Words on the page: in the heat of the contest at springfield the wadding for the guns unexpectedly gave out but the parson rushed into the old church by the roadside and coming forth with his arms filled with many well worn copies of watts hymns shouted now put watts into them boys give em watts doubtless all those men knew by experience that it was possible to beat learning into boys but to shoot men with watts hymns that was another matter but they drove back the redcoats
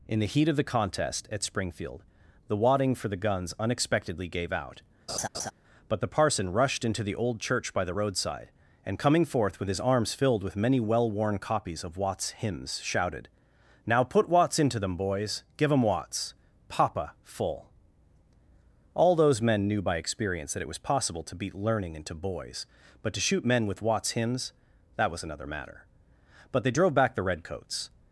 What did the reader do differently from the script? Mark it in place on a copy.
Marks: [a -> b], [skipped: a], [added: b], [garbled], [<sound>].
in the heat of the contest at springfield the wadding for the guns unexpectedly gave out [laugh] but the parson rushed into the old church by the roadside and coming forth with his arms filled with many well worn copies of watts hymns shouted now put watts into them boys give em watts [doubtless -> papa full] all those men knew by experience that it was possible to beat learning into boys but to shoot men with watts hymns that was another matter but they drove back the redcoats